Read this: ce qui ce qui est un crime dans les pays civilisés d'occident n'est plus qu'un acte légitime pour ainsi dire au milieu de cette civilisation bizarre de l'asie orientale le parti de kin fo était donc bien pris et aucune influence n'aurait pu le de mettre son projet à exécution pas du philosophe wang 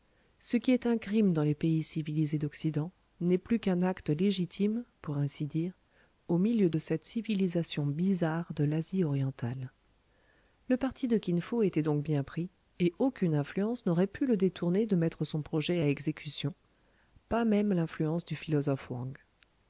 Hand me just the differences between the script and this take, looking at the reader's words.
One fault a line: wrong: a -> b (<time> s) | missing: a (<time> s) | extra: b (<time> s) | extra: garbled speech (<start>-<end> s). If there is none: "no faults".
missing: ce qui (0.7 s)
extra: détourner (14.4 s)
extra: même l'influence (17.4 s)